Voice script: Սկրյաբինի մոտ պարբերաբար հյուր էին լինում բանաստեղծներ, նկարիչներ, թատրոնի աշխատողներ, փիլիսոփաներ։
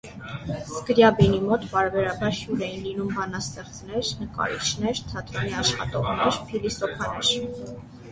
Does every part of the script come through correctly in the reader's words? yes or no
yes